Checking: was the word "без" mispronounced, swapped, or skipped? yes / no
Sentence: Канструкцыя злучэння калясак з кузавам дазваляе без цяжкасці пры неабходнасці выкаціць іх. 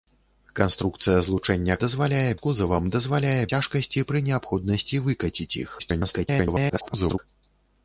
yes